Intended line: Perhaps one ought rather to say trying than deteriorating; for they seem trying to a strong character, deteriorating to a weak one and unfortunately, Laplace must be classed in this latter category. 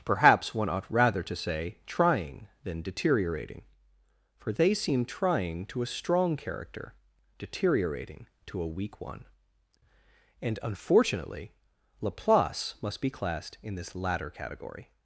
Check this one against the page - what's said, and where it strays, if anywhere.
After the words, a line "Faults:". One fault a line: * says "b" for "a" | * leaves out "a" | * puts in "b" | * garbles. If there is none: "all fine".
Perhaps one ought rather to say trying than deteriorating; for they seem trying to a strong character, deteriorating to a weak one and unfortunately, Laplace must be classed in this latter category.
Faults:
all fine